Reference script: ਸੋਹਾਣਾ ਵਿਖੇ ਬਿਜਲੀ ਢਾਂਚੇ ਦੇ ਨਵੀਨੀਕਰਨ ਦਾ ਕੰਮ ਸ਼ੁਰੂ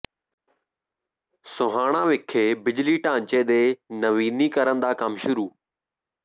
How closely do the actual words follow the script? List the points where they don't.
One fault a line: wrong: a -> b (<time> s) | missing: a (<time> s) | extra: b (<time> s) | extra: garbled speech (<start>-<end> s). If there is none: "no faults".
no faults